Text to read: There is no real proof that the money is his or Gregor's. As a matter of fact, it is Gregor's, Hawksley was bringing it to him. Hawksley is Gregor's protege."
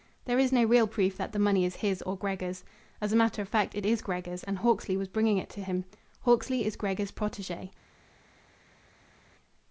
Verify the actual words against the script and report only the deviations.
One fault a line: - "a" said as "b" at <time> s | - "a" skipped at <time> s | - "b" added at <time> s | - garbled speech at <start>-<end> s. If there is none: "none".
- "and" added at 4.4 s